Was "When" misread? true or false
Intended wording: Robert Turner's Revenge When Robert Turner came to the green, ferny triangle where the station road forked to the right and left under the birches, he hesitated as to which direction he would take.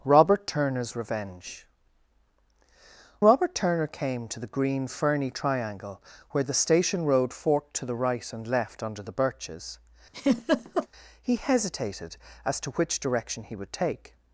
true